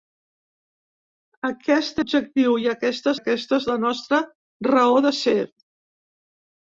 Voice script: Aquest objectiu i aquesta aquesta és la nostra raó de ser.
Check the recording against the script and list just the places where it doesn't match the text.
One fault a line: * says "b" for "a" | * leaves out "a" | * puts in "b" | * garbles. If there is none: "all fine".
all fine